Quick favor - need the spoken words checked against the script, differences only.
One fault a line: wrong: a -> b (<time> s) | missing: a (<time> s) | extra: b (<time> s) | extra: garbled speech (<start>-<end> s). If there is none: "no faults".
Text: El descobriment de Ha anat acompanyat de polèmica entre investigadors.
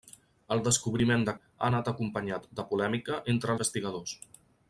no faults